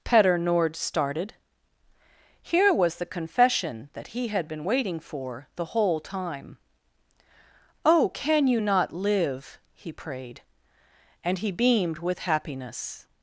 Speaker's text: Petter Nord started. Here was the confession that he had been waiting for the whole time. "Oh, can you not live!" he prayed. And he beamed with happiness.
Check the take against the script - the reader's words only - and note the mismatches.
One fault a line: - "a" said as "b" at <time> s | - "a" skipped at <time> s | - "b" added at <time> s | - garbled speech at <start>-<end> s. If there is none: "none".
none